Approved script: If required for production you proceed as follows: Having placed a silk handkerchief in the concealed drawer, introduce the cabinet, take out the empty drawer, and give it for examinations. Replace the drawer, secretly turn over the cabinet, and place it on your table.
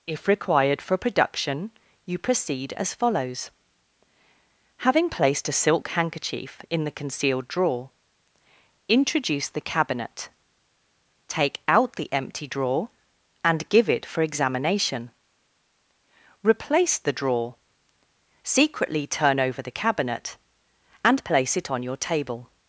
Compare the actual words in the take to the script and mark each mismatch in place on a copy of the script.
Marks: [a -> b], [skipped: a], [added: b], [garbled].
If required for production you proceed as follows: Having placed a silk handkerchief in the concealed drawer, introduce the cabinet, take out the empty drawer, and give it for [examinations. -> examination] Replace the drawer, secretly turn over the cabinet, and place it on your table.